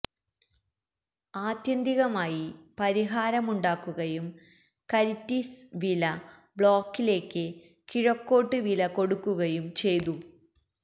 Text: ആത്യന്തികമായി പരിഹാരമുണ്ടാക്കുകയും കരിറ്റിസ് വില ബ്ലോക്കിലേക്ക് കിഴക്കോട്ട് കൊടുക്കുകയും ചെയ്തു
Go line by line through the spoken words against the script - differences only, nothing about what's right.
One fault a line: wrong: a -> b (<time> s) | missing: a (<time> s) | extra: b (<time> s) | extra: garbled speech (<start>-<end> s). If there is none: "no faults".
extra: വില (8.6 s)